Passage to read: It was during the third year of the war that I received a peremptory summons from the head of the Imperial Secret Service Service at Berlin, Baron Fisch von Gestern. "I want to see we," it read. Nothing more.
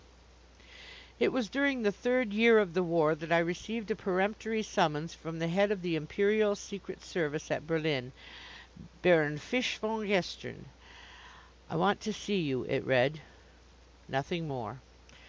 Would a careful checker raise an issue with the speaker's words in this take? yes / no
yes